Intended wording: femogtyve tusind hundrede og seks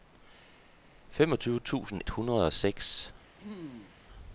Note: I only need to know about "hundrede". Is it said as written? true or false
true